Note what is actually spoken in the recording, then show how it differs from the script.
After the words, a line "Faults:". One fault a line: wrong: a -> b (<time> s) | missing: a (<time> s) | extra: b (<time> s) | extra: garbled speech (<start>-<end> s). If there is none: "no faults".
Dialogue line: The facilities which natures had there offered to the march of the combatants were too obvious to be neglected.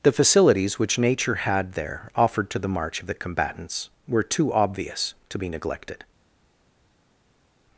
The facilities which nature had there offered to the march of the combatants were too obvious to be neglected.
Faults:
wrong: natures -> nature (1.0 s)